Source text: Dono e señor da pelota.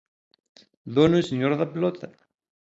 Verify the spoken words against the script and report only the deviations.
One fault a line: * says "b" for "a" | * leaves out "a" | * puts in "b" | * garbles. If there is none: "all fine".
all fine